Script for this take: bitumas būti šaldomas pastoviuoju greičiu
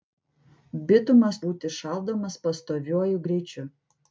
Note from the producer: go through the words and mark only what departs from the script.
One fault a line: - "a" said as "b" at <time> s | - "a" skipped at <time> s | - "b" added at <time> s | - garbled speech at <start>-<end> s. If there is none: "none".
none